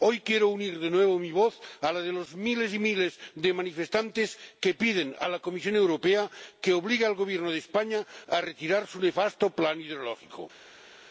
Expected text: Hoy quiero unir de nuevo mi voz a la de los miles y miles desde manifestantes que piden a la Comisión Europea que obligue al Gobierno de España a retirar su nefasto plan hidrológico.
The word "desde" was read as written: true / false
false